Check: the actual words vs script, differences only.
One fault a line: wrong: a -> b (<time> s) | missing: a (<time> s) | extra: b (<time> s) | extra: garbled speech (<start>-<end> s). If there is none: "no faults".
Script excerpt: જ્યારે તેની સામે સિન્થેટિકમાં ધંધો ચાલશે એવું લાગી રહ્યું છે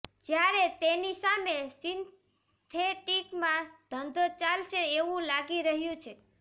no faults